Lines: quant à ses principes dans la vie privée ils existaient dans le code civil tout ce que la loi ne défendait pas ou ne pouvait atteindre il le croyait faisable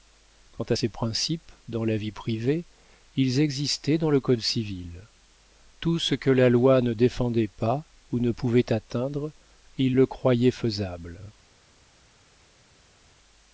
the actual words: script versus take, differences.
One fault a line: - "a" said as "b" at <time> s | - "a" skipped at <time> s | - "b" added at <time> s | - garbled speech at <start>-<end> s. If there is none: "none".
none